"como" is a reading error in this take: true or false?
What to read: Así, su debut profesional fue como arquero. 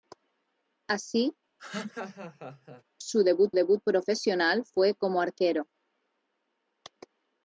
false